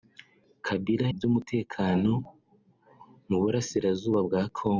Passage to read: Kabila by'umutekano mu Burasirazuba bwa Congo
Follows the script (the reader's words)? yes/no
yes